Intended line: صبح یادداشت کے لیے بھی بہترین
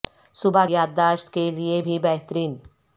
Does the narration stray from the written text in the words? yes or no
no